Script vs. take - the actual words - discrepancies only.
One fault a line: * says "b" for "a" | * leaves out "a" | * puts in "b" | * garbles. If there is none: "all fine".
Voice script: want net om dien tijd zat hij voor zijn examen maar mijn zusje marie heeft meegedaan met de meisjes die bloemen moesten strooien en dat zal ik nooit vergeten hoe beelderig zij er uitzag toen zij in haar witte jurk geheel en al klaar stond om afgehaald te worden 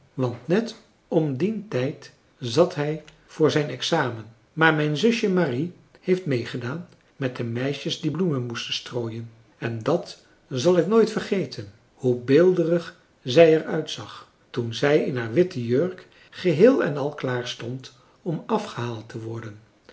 all fine